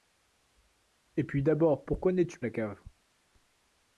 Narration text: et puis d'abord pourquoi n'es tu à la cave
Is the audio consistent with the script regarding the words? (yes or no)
yes